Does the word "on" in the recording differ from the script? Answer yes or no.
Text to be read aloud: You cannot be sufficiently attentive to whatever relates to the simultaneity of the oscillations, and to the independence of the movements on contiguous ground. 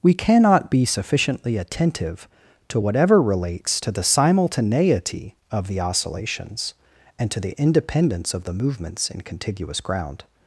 yes